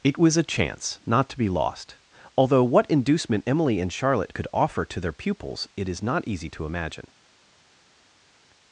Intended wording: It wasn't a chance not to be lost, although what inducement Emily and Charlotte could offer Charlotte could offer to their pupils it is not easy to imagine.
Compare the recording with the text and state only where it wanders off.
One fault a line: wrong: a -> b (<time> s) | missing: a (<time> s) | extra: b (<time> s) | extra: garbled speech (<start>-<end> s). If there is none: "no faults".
wrong: wasn't -> was (0.2 s)
missing: Charlotte could offer (4.8 s)